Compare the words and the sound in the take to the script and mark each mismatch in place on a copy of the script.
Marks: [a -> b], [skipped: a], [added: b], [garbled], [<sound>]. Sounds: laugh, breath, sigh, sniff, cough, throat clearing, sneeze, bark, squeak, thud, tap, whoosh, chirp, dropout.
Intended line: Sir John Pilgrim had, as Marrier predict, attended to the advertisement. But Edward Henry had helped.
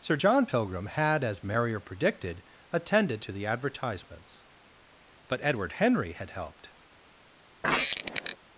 Sir John Pilgrim had, as Marrier [predict, -> predicted] attended to the [advertisement. -> advertisements] But Edward Henry had helped. [squeak]